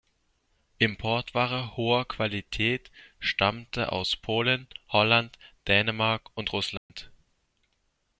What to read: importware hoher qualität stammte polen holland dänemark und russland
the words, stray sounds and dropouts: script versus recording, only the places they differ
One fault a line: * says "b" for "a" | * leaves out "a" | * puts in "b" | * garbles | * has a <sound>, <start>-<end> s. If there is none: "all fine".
* puts in "aus"
* has a dropout, 6.8-6.9 s